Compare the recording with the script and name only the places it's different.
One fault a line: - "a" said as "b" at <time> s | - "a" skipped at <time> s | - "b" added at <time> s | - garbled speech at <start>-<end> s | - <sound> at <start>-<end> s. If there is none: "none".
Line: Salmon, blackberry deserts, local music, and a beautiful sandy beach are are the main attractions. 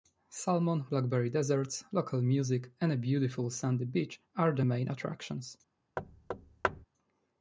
- "are" skipped at 4.5 s
- thud at 6.0-6.8 s